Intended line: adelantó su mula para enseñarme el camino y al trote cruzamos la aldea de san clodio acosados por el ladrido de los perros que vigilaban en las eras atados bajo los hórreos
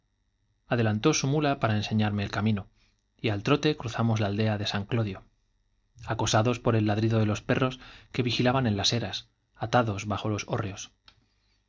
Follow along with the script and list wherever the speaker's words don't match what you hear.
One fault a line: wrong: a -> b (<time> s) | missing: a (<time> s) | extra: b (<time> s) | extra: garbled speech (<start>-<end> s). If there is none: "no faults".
no faults